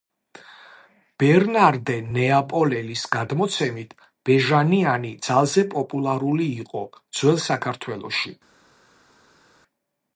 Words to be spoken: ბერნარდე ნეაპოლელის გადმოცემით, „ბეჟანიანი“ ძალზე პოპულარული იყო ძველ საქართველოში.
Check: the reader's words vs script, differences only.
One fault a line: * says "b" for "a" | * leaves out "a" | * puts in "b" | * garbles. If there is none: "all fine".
all fine